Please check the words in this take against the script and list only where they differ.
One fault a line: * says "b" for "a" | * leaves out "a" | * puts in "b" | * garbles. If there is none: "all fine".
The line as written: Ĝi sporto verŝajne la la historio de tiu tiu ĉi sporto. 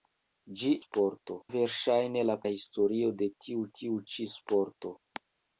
all fine